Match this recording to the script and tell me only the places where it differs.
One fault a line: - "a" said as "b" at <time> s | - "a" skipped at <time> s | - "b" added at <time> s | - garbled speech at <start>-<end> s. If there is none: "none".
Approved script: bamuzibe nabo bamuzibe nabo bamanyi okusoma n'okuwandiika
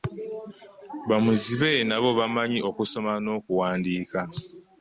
- "bamuzibe nabo" skipped at 2.1 s